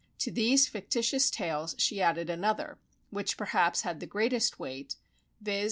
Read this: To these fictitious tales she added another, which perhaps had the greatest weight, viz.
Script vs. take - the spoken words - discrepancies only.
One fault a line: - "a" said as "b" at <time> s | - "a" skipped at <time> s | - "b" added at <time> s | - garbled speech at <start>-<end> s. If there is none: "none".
none